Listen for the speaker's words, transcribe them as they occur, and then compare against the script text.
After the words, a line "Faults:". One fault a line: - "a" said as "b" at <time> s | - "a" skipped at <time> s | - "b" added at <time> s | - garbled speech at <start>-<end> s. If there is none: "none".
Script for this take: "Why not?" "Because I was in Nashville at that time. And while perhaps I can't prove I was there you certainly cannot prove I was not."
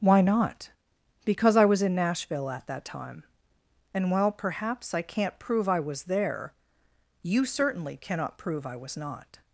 "Why not?" "Because I was in Nashville at that time. And while perhaps I can't prove I was there you certainly cannot prove I was not."
Faults:
none